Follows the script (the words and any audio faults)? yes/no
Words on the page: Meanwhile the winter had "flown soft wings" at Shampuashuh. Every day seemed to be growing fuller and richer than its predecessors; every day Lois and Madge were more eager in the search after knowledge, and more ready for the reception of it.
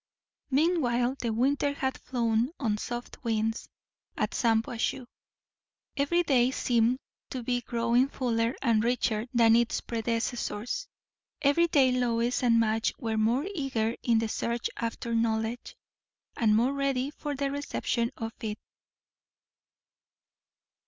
no